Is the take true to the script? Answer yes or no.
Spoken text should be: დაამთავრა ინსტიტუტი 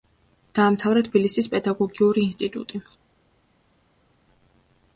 no